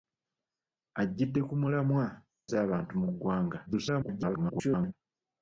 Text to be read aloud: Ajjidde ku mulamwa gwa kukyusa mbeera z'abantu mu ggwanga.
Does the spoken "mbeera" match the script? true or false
false